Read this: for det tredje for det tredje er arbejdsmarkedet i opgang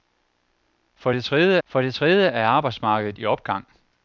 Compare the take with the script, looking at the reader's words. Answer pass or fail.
pass